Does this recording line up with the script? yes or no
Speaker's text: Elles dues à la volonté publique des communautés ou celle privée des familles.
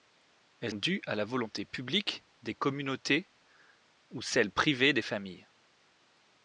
yes